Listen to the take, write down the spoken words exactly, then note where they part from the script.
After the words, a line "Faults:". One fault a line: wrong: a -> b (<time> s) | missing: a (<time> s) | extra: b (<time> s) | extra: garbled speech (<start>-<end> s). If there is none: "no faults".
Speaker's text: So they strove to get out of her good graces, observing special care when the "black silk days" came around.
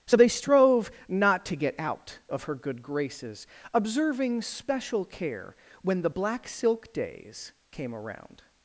So they strove not to get out of her good graces, observing special care when the "black silk days" came around.
Faults:
extra: not (1.1 s)